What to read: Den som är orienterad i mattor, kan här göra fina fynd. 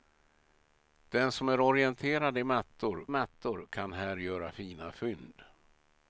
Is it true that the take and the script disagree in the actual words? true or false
true